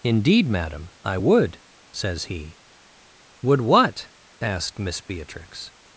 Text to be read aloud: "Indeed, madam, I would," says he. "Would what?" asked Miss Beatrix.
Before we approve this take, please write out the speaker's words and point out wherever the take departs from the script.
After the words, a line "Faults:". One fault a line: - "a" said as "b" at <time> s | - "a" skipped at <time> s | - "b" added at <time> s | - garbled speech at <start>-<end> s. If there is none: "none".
"Indeed, madam, I would," says he. "Would what?" asked Miss Beatrix.
Faults:
none